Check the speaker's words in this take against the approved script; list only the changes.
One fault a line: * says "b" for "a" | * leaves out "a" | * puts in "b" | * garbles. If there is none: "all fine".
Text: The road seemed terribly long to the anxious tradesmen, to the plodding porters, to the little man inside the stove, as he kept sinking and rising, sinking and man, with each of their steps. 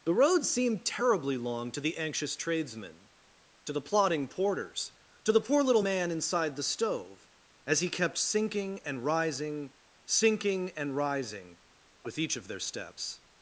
* puts in "poor"
* says "rising" for "man"